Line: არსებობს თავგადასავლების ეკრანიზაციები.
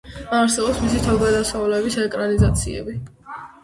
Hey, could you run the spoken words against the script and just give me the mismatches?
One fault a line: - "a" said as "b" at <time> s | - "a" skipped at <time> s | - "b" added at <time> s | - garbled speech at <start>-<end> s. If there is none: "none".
- "მისი" added at 0.8 s